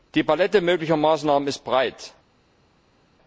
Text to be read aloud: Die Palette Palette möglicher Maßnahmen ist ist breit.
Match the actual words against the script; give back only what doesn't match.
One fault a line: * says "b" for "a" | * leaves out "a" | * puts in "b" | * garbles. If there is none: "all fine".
* leaves out "Palette"
* leaves out "ist"